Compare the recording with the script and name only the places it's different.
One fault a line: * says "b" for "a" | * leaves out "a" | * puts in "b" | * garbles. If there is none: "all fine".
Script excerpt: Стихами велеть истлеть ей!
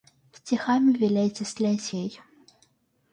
all fine